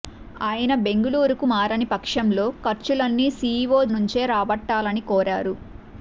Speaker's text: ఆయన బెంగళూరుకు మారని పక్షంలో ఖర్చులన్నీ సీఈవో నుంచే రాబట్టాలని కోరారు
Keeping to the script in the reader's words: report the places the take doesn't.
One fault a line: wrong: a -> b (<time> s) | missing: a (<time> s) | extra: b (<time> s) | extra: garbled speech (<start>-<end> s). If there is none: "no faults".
no faults